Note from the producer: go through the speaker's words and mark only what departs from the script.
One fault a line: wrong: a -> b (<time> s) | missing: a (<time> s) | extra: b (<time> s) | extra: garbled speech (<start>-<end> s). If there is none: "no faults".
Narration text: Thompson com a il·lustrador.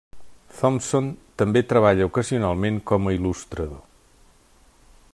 extra: també treballa ocasionalment (1.4 s)